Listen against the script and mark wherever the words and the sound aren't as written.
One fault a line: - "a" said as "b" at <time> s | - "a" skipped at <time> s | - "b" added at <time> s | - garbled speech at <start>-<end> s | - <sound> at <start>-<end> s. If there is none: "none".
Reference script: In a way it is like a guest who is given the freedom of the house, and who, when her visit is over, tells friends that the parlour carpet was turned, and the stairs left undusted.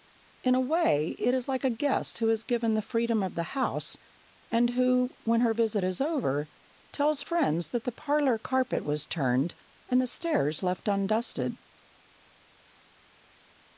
none